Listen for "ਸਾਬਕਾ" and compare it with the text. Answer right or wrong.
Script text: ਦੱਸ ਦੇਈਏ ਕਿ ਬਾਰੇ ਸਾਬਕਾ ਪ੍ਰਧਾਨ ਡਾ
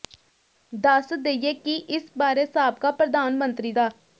right